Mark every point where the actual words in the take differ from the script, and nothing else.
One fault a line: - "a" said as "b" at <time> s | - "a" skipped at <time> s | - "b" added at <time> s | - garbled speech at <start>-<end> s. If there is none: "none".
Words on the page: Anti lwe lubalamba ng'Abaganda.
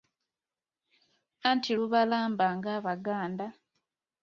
- "lwe" skipped at 1.7 s